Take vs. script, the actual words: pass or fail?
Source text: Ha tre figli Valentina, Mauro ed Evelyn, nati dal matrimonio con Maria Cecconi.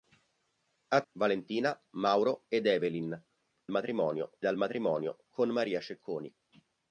fail